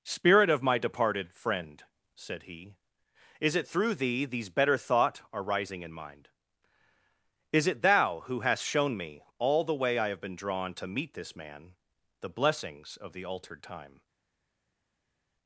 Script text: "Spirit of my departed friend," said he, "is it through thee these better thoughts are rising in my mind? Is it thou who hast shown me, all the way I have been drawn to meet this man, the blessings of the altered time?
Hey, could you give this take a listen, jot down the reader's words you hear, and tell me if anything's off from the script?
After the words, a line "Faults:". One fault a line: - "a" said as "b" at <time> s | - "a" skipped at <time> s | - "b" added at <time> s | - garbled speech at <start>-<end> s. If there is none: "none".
"Spirit of my departed friend," said he, "is it through thee these better thought are rising in mind? Is it thou who hast shown me, all the way I have been drawn to meet this man, the blessings of the altered time?
Faults:
- "thoughts" said as "thought" at 4.8 s
- "my" skipped at 5.9 s